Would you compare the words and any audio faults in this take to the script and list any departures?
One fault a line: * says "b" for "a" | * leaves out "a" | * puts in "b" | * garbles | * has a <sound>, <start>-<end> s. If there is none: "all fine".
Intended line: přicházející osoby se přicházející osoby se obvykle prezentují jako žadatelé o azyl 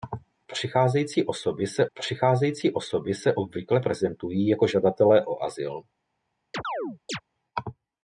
* has a chirp, 6.5-7.2 s